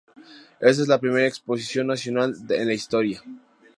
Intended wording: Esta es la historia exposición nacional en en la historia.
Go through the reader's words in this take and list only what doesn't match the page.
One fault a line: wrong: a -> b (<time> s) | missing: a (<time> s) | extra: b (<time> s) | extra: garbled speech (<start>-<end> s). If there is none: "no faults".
wrong: historia -> primera (1.0 s)
missing: en (2.7 s)